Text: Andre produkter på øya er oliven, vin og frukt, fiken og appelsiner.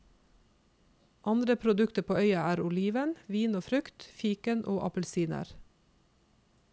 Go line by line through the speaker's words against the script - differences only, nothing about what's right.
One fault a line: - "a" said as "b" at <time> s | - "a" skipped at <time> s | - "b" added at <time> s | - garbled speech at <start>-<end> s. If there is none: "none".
none